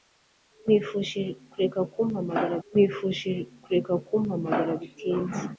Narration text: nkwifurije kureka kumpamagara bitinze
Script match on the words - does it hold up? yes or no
no